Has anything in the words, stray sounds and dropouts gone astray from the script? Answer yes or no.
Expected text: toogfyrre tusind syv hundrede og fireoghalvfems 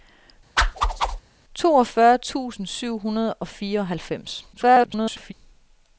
yes